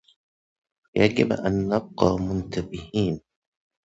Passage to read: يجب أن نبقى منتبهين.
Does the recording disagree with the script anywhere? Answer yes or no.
no